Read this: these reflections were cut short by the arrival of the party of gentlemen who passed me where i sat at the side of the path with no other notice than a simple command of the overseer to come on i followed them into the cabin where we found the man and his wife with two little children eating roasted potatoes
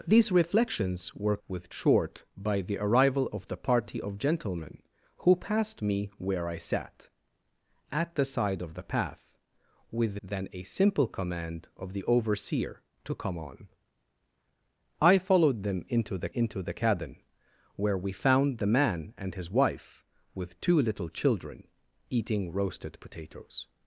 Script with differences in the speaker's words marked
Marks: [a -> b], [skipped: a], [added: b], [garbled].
these reflections were [cut -> with] short by the arrival of the party of gentlemen who passed me where i sat at the side of the path with [skipped: no other notice] than a simple command of the overseer to come on i followed them into the [added: into the] cabin where we found the man and his wife with two little children eating roasted potatoes